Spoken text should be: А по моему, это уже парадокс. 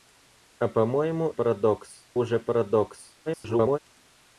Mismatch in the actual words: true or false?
true